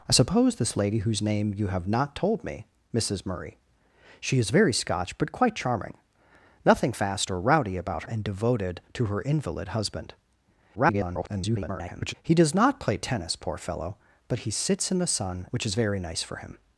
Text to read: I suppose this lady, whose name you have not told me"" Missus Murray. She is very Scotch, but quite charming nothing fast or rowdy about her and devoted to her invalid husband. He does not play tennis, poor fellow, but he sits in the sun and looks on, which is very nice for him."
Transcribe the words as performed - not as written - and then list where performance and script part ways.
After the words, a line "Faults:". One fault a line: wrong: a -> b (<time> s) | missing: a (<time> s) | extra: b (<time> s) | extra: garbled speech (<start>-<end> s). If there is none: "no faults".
I suppose this lady, whose name you have not told me"" Missus Murray. She is very Scotch, but quite charming nothing fast or rowdy about and devoted to her invalid husband. [garbled] He does not play tennis, poor fellow, but he sits in the sun which is very nice for him."
Faults:
missing: her (8.0 s)
extra: garbled speech (10.7-12.1 s)
missing: and looks on (15.5 s)